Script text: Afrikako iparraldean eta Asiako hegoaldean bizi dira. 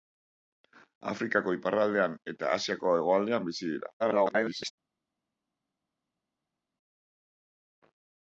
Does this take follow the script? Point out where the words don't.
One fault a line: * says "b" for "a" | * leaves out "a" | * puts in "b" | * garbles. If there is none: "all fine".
* garbles